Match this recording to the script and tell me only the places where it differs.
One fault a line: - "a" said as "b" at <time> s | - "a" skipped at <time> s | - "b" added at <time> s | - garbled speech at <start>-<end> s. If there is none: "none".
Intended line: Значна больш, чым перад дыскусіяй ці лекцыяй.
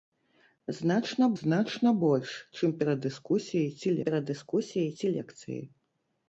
- "значна" added at 1.4 s
- "перад дыскусіяй ці" added at 4.1 s